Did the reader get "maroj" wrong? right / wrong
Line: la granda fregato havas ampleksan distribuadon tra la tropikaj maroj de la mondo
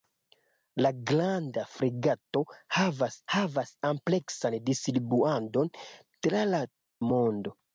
wrong